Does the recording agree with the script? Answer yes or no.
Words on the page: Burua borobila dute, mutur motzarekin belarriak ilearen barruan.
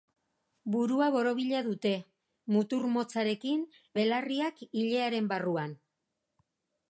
yes